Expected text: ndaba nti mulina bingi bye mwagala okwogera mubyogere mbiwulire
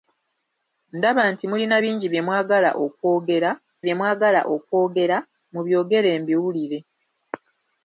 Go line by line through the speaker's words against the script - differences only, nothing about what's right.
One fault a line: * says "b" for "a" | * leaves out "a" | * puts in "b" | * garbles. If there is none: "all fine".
* puts in "bye mwagala okwogera"